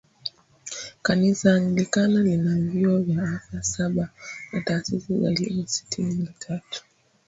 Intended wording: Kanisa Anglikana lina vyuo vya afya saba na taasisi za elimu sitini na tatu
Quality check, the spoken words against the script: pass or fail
pass